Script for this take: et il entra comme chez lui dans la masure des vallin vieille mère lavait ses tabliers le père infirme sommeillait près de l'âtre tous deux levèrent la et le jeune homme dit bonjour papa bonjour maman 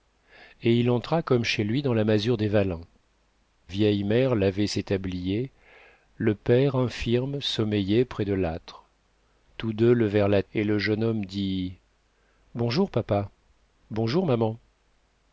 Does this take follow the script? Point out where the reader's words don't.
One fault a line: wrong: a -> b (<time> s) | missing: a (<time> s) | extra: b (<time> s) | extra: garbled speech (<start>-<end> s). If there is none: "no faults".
no faults